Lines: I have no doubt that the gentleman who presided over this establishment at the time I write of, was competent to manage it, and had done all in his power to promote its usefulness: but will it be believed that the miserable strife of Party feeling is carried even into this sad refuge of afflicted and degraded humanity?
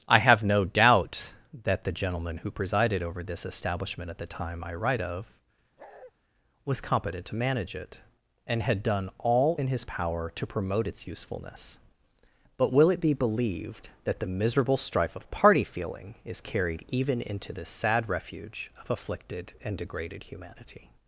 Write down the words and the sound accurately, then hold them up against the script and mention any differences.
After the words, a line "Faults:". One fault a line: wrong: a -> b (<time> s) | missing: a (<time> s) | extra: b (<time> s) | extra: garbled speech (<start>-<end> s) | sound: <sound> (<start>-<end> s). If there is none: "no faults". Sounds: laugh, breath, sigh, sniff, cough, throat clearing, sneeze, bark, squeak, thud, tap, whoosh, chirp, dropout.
I have no doubt that the gentleman who presided over this establishment at the time I write of, was competent to manage it, and had done all in his power to promote its usefulness: but will it be believed that the miserable strife of Party feeling is carried even into this sad refuge of afflicted and degraded humanity?
Faults:
sound: bark (5.8-6.1 s)